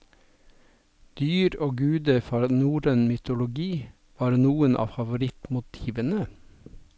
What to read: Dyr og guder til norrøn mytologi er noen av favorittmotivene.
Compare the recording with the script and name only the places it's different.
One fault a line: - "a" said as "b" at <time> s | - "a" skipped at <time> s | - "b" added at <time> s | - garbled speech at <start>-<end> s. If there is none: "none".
- "til" said as "fra" at 2.3 s
- "er" said as "var" at 4.2 s